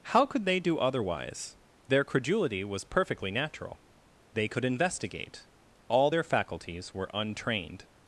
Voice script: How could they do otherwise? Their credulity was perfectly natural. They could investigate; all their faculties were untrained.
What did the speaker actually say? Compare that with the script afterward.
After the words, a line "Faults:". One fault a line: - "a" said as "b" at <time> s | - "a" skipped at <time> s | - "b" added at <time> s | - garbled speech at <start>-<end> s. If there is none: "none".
How could they do otherwise? Their credulity was perfectly natural. They could investigate; all their faculties were untrained.
Faults:
none